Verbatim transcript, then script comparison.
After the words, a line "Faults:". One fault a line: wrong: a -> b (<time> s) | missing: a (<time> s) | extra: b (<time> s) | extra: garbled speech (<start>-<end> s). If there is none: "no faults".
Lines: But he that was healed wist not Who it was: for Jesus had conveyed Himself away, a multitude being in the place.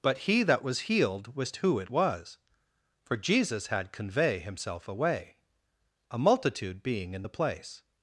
But he that was healed wist Who it was: for Jesus had convey Himself away, a multitude being in the place.
Faults:
missing: not (1.6 s)
wrong: conveyed -> convey (3.9 s)